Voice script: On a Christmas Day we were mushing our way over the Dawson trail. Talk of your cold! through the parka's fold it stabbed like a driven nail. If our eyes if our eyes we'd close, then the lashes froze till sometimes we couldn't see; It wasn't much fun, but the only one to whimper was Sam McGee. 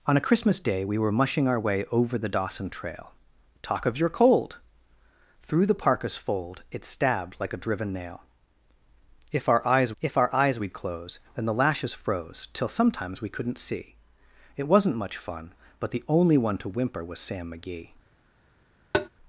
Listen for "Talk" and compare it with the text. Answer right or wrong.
right